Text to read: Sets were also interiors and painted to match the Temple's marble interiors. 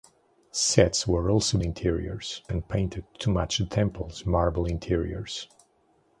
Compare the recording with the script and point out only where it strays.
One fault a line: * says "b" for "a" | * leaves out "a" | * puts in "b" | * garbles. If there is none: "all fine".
all fine